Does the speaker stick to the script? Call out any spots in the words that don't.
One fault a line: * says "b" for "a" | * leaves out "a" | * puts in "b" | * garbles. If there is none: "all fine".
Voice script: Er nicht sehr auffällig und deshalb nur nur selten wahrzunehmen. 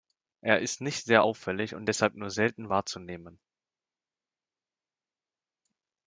* puts in "ist"
* leaves out "nur"